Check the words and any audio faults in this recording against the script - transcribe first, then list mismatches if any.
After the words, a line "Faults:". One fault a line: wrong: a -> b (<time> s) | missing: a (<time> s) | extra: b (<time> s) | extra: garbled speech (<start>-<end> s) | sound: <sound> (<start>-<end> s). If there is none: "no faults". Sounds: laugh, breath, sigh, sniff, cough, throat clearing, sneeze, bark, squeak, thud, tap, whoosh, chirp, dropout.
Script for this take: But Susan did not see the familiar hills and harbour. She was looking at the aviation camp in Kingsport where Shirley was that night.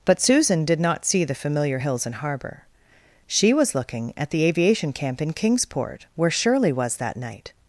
But Susan did not see the familiar hills and harbour. She was looking at the aviation camp in Kingsport where Shirley was that night.
Faults:
no faults